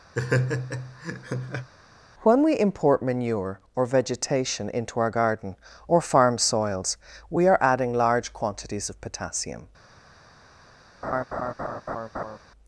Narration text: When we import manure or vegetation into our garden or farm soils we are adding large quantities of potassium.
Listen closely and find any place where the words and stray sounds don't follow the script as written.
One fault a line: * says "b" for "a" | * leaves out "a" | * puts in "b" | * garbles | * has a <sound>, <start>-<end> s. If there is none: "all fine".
* has a laugh, 0.1-1.7 s
* has a laugh, 11.0-12.4 s